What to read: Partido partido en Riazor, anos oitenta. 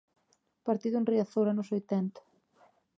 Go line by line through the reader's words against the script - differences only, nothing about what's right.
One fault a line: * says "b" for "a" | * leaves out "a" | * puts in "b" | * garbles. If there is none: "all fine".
* leaves out "partido"